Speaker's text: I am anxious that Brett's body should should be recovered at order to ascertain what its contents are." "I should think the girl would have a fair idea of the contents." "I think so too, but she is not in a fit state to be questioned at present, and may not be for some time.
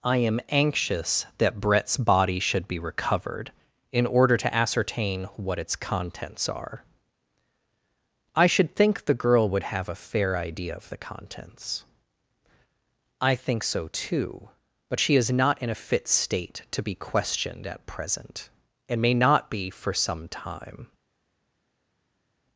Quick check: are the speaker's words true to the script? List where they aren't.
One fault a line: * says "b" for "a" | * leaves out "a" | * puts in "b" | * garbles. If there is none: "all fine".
* leaves out "should"
* says "in" for "at"